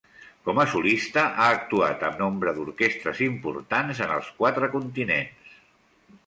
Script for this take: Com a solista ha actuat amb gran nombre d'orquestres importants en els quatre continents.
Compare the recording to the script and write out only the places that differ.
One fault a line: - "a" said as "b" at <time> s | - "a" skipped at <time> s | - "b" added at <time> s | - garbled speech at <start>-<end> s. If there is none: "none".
- "gran" skipped at 2.2 s